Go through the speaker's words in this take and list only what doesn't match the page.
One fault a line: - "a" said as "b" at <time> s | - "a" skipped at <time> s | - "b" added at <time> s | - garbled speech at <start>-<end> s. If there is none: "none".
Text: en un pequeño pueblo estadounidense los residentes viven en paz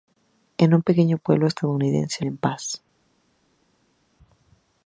- "los residentes viven" skipped at 2.2 s